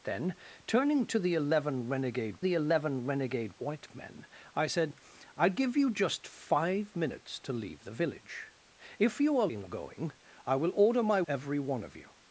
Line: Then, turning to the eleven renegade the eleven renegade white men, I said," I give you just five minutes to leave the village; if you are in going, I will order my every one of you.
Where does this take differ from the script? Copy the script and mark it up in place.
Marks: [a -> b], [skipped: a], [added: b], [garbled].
Then, turning to the eleven renegade the eleven renegade white men, I said," I give you just five minutes to leave the village; if you are in going, I will order my every one of you.